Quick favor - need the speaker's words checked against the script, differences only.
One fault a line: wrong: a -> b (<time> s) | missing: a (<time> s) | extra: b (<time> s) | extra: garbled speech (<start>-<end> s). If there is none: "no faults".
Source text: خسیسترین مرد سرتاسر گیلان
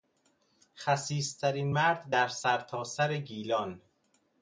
extra: در (2.1 s)